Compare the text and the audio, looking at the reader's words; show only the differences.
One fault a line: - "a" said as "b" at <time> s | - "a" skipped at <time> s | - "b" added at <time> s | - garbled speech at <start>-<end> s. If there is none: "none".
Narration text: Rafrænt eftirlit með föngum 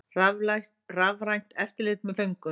none